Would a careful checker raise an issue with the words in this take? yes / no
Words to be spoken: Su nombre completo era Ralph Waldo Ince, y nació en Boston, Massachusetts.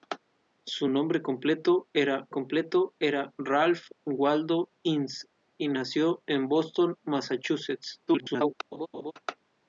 yes